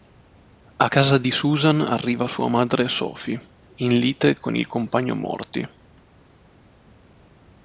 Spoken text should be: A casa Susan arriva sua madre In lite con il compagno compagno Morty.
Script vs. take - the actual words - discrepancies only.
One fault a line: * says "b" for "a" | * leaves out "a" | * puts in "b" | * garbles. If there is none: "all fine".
* puts in "di"
* puts in "Sophie"
* leaves out "compagno"